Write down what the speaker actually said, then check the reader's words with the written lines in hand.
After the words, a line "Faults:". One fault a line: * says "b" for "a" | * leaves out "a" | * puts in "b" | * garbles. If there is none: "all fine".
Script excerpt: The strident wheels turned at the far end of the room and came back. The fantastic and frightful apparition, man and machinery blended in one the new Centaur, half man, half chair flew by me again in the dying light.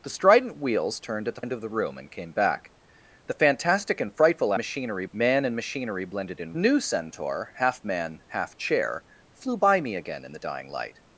The strident wheels turned at the end of the room and came back. The fantastic and frightful machinery, man and machinery blended in new Centaur, half man, half chair flew by me again in the dying light.
Faults:
* leaves out "far"
* says "machinery" for "apparition"
* leaves out "one the"